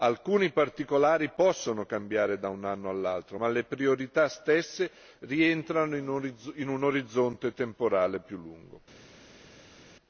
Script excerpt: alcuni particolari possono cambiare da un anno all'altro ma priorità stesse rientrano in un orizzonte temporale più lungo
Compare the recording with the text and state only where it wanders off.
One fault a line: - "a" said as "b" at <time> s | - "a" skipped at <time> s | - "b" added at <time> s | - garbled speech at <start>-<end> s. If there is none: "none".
- "le" added at 3.5 s